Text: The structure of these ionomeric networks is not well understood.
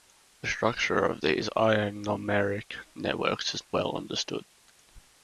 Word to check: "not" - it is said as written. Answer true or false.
false